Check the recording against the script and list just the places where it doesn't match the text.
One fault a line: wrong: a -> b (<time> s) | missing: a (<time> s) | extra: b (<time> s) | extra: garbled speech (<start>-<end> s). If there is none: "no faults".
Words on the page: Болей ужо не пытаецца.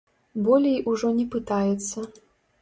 no faults